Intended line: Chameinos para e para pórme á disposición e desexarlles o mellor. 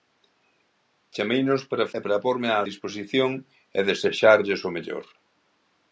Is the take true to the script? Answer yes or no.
yes